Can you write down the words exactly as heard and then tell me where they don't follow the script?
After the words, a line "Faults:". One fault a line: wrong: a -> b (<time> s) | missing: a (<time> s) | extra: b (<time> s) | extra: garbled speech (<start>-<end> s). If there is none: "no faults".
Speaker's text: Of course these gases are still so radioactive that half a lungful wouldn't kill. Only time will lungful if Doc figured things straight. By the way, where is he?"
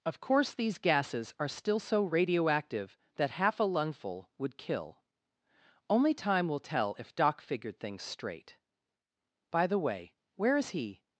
Of course these gases are still so radioactive that half a lungful would kill. Only time will tell if Doc figured things straight. By the way, where is he?"
Faults:
wrong: wouldn't -> would (4.4 s)
wrong: lungful -> tell (6.6 s)